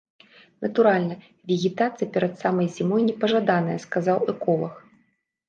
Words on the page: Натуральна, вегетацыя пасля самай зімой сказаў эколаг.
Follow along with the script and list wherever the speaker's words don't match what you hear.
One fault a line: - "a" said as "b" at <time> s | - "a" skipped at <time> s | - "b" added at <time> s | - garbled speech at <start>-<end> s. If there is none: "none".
- "пасля" said as "перад" at 2.1 s
- "непажаданая" added at 3.1 s